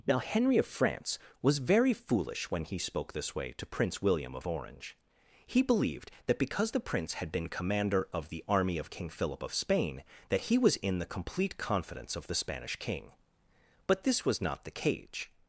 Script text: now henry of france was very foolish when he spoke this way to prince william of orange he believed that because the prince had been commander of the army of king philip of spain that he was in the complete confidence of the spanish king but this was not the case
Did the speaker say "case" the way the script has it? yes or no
no